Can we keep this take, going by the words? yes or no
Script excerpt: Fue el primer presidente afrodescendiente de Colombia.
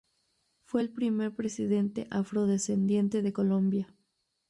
yes